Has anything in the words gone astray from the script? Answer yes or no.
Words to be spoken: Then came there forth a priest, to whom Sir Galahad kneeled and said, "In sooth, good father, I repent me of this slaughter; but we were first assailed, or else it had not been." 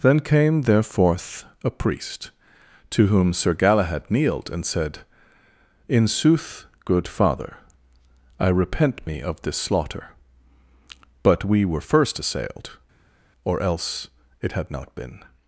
no